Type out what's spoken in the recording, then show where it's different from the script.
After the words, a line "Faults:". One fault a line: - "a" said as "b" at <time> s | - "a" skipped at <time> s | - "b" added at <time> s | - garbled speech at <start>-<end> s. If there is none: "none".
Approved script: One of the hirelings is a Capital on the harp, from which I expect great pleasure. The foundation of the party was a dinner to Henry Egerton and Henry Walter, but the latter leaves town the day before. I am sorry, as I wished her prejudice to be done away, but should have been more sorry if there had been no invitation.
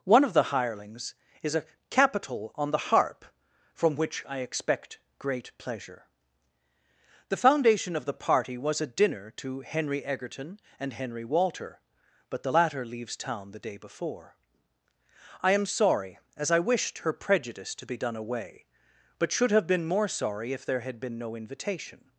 One of the hirelings is a Capital on the harp, from which I expect great pleasure. The foundation of the party was a dinner to Henry Egerton and Henry Walter, but the latter leaves town the day before. I am sorry, as I wished her prejudice to be done away, but should have been more sorry if there had been no invitation.
Faults:
none